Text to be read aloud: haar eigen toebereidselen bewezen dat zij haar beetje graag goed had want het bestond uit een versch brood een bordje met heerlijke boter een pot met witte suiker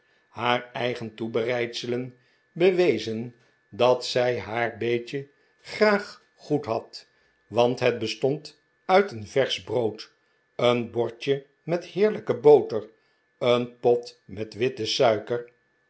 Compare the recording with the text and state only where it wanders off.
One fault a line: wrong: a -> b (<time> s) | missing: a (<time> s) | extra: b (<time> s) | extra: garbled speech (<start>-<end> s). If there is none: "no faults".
no faults